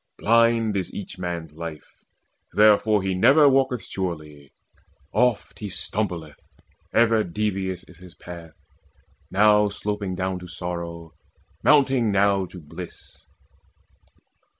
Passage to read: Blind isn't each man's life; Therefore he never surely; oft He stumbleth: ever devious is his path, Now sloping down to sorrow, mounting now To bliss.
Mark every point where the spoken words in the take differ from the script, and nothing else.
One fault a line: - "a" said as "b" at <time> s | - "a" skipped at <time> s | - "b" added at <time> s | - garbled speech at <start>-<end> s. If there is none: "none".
- "isn't" said as "is" at 0.8 s
- "walketh" added at 3.5 s